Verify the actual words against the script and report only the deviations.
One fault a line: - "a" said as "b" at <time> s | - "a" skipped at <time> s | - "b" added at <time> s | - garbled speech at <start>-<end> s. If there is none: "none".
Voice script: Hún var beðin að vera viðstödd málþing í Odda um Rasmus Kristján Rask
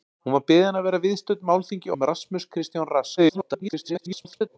- "Odda" skipped at 1.9 s
- garbled speech at 3.2-4.6 s